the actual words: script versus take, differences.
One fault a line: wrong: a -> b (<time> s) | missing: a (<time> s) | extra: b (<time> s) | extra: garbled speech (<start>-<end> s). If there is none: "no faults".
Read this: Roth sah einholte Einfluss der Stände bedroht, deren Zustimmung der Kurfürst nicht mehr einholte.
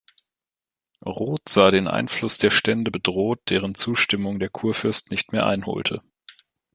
wrong: einholte -> den (1.7 s)